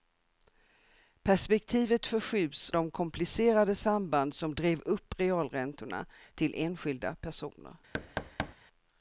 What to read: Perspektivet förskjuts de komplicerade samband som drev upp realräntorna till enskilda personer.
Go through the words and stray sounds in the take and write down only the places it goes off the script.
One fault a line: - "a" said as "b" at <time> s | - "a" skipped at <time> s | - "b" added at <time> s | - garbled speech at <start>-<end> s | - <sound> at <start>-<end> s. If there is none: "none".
- thud at 7.9-8.5 s